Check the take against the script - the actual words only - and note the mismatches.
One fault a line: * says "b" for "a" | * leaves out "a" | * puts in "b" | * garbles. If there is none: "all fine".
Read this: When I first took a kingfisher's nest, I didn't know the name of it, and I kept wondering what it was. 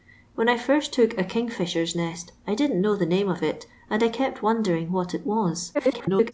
* garbles